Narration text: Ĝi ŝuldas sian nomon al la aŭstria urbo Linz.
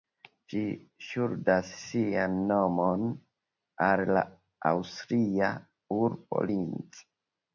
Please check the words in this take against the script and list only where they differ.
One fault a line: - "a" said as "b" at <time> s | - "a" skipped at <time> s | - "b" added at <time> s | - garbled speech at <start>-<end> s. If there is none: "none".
none